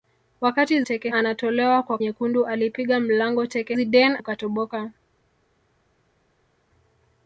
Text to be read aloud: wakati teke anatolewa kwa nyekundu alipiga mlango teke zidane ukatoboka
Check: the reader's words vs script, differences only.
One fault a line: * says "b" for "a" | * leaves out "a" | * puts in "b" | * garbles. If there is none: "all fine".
all fine